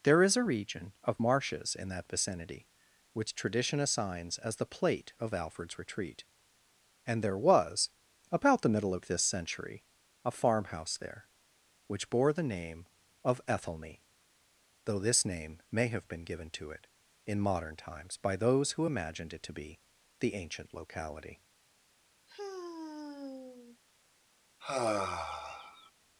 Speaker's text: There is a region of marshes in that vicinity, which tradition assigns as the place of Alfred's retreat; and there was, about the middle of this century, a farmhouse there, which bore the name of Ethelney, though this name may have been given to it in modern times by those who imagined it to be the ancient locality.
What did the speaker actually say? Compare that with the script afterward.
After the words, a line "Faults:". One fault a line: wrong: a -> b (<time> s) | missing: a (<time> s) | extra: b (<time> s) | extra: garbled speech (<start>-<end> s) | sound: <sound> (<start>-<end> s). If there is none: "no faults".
There is a region of marshes in that vicinity, which tradition assigns as the plate of Alfred's retreat; and there was, about the middle of this century, a farmhouse there, which bore the name of Ethelney, though this name may have been given to it in modern times by those who imagined it to be the ancient locality.
Faults:
wrong: place -> plate (4.7 s)
sound: sigh (22.3-23.8 s)
sound: sigh (24.6-25.9 s)